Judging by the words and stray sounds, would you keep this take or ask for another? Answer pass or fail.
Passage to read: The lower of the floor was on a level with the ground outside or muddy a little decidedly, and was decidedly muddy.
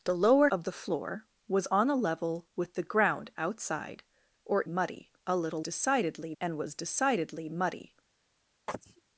fail